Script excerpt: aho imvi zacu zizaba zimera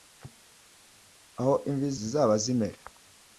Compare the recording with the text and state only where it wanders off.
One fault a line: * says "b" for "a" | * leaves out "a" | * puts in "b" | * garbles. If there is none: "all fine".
* leaves out "zacu"